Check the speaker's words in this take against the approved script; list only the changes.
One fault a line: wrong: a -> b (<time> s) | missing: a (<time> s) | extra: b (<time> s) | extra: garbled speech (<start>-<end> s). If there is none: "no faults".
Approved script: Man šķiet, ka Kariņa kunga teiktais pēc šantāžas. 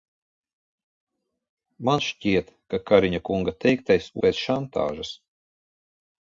no faults